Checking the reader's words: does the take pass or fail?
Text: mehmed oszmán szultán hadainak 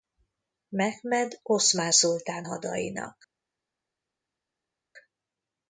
pass